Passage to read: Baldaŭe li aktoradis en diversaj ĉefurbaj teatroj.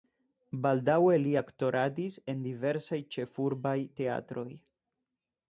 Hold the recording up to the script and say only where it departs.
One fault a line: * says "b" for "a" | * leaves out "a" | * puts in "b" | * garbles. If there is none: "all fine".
all fine